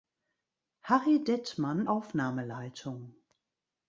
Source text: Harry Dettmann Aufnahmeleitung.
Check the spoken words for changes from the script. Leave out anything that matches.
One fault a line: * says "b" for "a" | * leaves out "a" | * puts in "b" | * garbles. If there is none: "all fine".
all fine